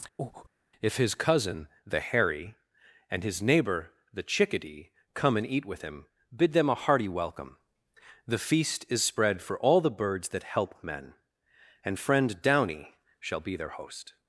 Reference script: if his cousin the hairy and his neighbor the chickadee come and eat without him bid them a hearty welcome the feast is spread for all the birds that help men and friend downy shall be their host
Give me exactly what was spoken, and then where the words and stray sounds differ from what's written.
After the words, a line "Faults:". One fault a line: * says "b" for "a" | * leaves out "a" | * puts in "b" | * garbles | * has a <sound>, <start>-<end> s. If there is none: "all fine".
if his cousin the hairy and his neighbor the chickadee come and eat with him bid them a hearty welcome the feast is spread for all the birds that help men and friend downy shall be their host
Faults:
* has a breath, 0.2-0.5 s
* says "with" for "without"